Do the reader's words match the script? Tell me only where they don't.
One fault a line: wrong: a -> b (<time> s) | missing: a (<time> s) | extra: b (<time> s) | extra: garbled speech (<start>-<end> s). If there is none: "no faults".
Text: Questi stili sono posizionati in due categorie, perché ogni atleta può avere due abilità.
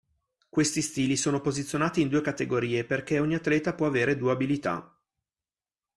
no faults